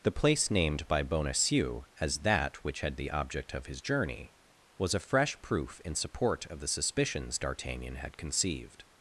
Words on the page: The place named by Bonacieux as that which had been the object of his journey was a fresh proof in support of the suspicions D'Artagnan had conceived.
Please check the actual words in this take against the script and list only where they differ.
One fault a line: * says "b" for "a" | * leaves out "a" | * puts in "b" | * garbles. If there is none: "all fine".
* leaves out "been"